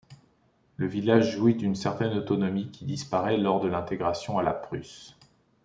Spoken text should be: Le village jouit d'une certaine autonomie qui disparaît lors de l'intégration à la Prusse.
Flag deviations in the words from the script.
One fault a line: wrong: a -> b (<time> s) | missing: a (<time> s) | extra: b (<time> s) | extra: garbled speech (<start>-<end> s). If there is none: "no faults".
no faults